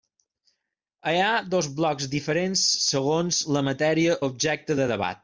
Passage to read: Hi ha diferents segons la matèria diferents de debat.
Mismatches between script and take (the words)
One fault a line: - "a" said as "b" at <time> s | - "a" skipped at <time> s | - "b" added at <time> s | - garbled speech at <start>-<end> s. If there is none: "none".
- "dos blocs" added at 1.6 s
- "diferents" said as "objecte" at 4.3 s